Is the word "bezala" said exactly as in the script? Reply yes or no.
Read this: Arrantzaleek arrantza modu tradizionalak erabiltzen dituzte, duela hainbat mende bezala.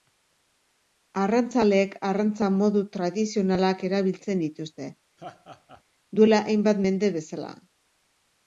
yes